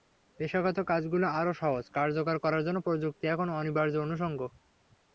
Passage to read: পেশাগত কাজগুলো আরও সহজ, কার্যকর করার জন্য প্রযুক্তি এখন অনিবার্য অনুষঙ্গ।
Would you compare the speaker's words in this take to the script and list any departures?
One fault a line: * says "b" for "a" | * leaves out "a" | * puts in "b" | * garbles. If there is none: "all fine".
all fine